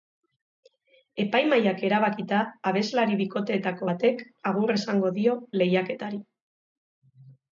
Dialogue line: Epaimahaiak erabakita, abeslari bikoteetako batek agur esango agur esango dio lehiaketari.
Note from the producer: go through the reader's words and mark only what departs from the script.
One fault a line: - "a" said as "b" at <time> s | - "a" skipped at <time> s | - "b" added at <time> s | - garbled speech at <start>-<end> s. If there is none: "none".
- "agur esango" skipped at 5.1 s